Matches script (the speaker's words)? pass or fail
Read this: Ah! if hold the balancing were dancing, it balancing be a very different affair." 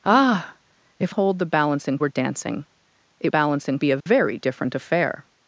pass